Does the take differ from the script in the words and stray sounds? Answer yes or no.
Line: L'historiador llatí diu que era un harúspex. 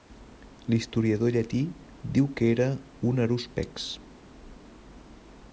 no